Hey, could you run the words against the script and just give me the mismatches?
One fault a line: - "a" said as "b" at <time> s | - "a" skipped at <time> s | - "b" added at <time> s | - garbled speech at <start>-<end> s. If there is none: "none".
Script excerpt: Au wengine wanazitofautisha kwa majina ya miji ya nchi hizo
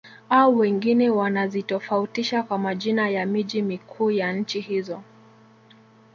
- "mikuu" added at 3.6 s